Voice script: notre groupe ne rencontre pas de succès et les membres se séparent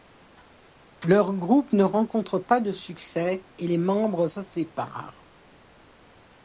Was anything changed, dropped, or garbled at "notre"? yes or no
yes